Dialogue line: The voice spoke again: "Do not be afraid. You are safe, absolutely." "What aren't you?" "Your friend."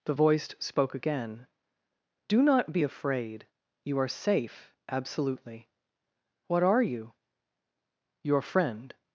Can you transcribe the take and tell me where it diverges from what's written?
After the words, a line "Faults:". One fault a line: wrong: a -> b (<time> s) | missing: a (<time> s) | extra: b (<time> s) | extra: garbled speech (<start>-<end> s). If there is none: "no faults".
The voice spoke again: "Do not be afraid. You are safe, absolutely." "What are you?" "Your friend."
Faults:
wrong: aren't -> are (6.6 s)